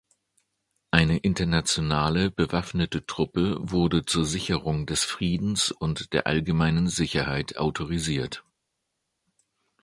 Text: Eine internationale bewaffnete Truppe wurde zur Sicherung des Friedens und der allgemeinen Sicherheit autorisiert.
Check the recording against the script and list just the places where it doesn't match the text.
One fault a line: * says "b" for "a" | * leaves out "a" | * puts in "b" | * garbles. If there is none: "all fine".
all fine